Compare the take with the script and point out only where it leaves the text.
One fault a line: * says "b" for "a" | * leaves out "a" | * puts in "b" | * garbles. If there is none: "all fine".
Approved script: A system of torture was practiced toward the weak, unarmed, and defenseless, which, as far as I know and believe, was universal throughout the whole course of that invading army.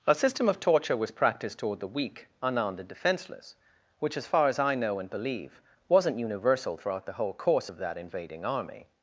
* says "wasn't" for "was"